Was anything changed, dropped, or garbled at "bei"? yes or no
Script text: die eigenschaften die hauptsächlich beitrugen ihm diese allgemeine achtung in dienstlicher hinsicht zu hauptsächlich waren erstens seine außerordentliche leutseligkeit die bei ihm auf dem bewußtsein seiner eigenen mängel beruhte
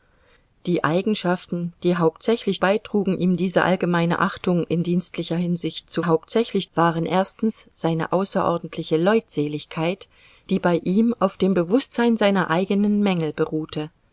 no